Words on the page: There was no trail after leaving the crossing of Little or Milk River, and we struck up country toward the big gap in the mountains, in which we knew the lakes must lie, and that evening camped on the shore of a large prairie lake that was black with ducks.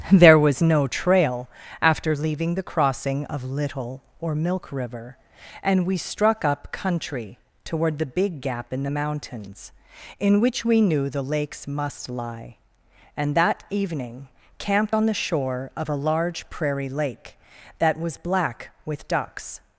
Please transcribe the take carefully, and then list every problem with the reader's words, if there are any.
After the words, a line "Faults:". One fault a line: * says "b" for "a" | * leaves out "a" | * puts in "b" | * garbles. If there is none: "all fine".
There was no trail after leaving the crossing of Little or Milk River, and we struck up country toward the big gap in the mountains, in which we knew the lakes must lie, and that evening camped on the shore of a large prairie lake that was black with ducks.
Faults:
all fine